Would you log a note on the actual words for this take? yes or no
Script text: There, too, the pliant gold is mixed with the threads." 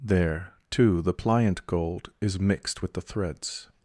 no